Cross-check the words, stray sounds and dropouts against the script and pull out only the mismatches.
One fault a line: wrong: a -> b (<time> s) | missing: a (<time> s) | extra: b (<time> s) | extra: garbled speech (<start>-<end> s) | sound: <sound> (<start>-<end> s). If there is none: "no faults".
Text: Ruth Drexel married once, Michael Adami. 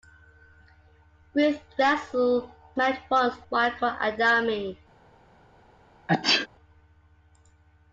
sound: sneeze (6.1-6.5 s)